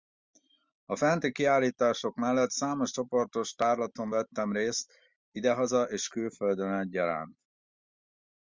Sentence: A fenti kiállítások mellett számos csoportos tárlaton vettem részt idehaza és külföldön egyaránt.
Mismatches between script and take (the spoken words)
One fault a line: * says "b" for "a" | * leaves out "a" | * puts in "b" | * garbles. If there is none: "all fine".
all fine